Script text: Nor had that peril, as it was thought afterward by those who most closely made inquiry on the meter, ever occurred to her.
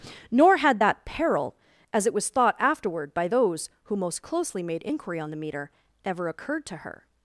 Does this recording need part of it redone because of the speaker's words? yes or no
no